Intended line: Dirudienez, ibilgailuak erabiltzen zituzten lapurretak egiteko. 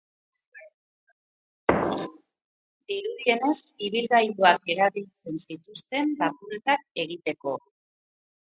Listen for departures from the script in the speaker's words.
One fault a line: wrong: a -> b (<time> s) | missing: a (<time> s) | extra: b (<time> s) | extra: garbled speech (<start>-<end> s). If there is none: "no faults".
no faults